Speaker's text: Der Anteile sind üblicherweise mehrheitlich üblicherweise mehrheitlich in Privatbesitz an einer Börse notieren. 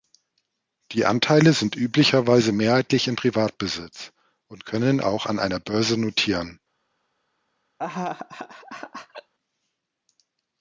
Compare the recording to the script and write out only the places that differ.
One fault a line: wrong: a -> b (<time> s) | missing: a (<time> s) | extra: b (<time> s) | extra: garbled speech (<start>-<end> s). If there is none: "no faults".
wrong: Der -> Die (0.9 s)
wrong: üblicherweise mehrheitlich in Privatbesitz -> in Privatbesitz und können auch (3.1 s)